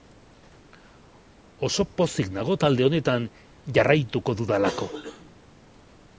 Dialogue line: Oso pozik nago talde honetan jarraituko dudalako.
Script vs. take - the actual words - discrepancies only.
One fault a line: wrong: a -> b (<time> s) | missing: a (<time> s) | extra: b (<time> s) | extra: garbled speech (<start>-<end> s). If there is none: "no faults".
no faults